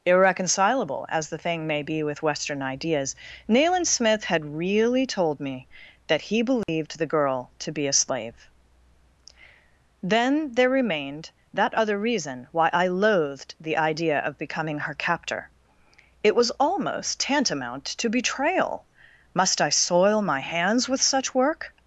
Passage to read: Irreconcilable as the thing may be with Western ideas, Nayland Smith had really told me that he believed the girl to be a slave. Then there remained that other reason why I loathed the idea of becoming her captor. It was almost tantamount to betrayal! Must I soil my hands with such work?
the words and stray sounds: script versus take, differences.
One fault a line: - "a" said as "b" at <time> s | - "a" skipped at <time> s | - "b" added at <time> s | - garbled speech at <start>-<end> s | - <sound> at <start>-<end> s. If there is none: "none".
- dropout at 6.6-6.7 s